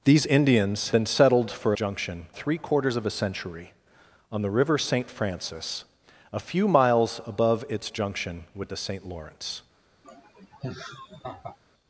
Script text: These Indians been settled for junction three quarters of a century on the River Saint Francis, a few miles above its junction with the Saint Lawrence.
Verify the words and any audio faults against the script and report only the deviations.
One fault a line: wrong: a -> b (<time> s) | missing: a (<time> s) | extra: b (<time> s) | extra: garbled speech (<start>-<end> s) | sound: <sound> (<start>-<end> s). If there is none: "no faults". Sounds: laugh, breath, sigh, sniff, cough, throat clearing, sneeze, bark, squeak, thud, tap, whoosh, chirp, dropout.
sound: laugh (10.0-11.6 s)